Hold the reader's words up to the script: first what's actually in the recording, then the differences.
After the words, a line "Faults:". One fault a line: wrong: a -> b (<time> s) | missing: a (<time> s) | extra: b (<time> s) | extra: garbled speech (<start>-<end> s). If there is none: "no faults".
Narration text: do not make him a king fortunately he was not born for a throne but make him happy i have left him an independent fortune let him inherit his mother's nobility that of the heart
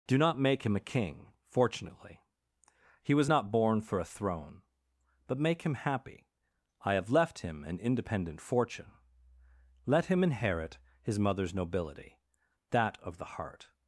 do not make him a king fortunately he was not born for a throne but make him happy i have left him an independent fortune let him inherit his mother's nobility that of the heart
Faults:
no faults